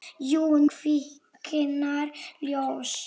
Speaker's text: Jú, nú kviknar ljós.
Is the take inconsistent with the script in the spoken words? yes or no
yes